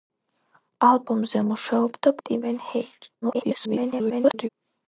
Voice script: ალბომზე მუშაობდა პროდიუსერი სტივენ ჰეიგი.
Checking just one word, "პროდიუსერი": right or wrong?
wrong